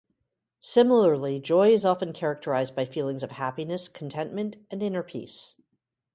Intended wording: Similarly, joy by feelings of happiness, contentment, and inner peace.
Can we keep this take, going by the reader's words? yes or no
no